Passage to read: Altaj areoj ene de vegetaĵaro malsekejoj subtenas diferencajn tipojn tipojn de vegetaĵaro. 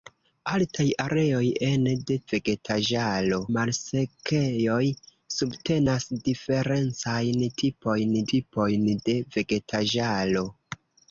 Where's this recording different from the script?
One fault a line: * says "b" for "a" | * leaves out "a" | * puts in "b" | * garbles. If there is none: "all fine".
all fine